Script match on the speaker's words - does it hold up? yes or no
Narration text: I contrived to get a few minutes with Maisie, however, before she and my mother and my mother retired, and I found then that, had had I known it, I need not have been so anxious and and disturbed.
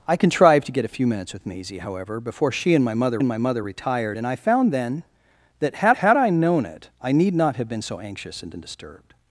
yes